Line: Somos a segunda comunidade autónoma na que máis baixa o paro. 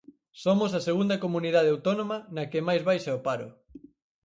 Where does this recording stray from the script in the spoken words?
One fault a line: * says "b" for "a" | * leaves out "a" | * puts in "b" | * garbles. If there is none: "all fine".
all fine